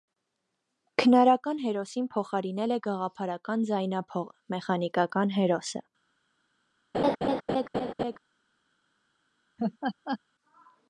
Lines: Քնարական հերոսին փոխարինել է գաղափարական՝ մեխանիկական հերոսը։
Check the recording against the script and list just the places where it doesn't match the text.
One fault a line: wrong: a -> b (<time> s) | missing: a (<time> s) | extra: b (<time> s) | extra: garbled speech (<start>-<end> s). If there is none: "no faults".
extra: ձայնափողը (3.7 s)